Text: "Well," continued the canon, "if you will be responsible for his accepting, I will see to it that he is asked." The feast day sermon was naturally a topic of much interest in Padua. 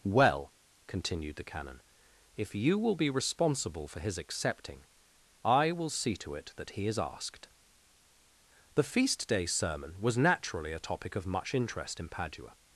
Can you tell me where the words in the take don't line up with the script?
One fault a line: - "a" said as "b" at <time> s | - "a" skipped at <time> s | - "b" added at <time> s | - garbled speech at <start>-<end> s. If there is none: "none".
none